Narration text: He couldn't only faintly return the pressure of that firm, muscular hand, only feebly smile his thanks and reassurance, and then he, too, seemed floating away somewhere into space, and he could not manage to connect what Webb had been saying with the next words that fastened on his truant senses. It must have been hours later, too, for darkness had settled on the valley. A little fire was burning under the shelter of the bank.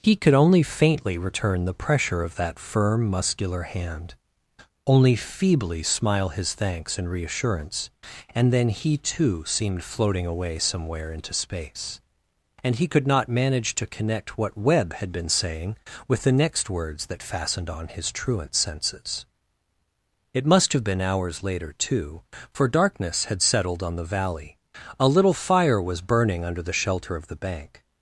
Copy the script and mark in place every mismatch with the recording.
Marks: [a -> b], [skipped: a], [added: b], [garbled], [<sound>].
He [couldn't -> could] only faintly return the pressure of that firm, muscular hand, only feebly smile his thanks and reassurance, and then he, too, seemed floating away somewhere into space, and he could not manage to connect what Webb had been saying with the next words that fastened on his truant senses. It must have been hours later, too, for darkness had settled on the valley. A little fire was burning under the shelter of the bank.